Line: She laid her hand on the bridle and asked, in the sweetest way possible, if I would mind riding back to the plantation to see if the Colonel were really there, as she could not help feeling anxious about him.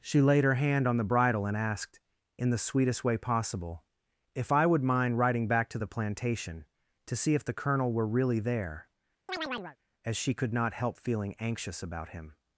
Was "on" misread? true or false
false